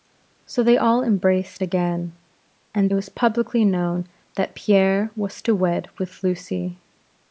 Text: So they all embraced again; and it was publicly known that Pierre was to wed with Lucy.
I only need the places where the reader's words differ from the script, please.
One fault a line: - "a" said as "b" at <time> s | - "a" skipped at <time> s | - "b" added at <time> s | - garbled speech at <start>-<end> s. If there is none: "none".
none